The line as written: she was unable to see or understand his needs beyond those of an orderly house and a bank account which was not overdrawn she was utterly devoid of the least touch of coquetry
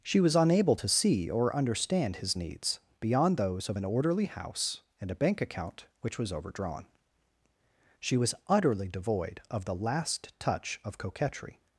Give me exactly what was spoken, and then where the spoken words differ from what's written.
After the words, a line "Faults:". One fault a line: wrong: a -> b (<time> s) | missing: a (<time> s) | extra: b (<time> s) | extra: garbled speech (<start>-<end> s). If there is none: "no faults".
she was unable to see or understand his needs beyond those of an orderly house and a bank account which was overdrawn she was utterly devoid of the last touch of coquetry
Faults:
missing: not (6.3 s)
wrong: least -> last (9.7 s)